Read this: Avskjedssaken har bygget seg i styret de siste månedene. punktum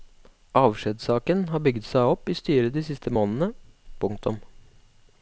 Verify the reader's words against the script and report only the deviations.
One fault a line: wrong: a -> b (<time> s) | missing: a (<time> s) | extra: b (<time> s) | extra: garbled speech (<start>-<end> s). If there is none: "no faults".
extra: opp (2.1 s)